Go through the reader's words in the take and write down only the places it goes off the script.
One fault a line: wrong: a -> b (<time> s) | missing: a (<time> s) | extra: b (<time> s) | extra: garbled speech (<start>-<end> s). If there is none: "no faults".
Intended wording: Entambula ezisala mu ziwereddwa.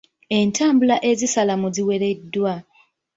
no faults